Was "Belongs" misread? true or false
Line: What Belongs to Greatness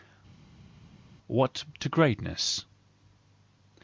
true